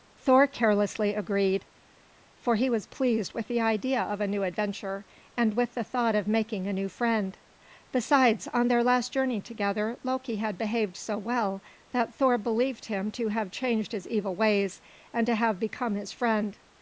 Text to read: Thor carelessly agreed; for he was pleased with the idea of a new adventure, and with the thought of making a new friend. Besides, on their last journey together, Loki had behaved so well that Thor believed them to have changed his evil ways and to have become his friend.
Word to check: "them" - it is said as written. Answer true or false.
false